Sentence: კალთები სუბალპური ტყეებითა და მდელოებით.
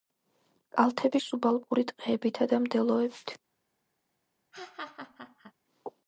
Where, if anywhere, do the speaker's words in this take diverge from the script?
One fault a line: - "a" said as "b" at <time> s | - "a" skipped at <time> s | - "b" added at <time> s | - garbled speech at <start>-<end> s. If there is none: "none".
none